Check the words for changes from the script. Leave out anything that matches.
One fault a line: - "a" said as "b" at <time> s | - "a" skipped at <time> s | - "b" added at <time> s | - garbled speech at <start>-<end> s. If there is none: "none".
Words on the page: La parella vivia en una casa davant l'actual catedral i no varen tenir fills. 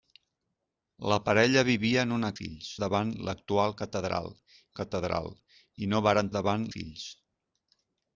- "casa" said as "fills" at 2.4 s
- "catedral" added at 4.8 s
- "tenir" said as "davant" at 6.4 s